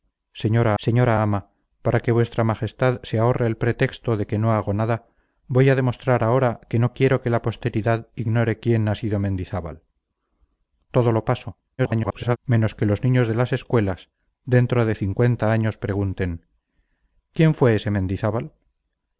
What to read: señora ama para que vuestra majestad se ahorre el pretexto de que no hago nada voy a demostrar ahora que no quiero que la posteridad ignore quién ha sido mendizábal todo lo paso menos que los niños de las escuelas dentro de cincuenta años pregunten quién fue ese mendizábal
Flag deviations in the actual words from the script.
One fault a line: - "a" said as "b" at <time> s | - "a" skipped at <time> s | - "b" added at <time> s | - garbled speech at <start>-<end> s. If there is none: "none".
- "señora" added at 0.8 s
- garbled speech at 11.8-12.4 s